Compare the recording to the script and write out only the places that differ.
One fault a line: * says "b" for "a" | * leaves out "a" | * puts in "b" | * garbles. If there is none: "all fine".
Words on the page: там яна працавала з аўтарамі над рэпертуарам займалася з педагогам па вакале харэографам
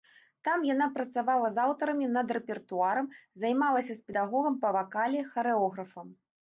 all fine